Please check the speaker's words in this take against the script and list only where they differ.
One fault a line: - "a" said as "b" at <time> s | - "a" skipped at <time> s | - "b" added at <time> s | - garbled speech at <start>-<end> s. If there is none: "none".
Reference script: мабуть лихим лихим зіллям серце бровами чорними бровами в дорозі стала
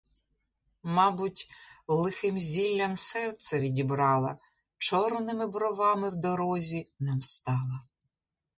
- "лихим" skipped at 2.4 s
- "бровами" said as "відібрала" at 3.6 s
- "нам" added at 7.0 s